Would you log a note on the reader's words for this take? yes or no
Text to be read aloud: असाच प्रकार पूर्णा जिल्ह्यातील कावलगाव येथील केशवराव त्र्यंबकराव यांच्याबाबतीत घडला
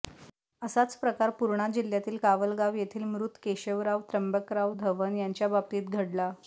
yes